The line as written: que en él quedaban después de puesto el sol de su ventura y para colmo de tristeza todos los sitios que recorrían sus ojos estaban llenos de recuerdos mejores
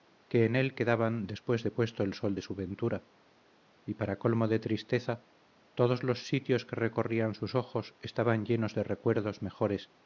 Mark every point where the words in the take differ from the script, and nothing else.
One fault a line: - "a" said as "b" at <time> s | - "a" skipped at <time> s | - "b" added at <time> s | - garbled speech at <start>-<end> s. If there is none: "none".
none